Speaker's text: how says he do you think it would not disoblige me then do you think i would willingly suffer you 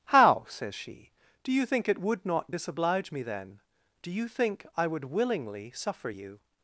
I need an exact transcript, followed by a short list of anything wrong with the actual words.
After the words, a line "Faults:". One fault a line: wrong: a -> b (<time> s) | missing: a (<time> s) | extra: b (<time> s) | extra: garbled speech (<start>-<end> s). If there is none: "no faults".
how says she do you think it would not disoblige me then do you think i would willingly suffer you
Faults:
wrong: he -> she (0.7 s)